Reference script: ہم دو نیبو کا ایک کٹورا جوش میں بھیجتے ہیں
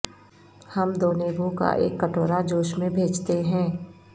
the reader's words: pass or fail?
pass